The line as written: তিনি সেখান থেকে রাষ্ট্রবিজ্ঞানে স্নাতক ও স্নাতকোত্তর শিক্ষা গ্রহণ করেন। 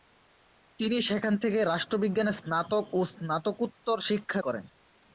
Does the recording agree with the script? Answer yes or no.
no